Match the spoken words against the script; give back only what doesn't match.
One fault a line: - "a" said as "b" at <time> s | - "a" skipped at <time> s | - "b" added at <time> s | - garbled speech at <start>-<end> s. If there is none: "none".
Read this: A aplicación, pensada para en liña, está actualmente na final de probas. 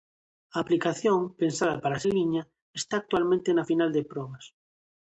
none